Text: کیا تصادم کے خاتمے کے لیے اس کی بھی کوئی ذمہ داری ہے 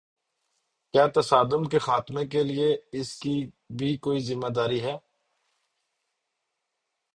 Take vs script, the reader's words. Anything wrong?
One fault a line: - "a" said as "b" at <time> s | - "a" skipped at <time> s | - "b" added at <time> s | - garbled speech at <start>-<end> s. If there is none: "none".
none